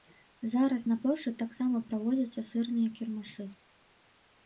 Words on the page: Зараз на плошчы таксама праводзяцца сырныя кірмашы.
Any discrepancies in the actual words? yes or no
no